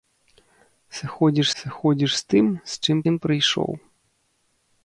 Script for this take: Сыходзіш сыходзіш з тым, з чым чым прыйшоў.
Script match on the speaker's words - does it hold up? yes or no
yes